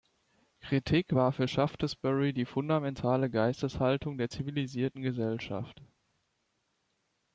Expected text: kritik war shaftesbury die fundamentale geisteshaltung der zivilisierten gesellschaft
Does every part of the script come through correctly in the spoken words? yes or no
no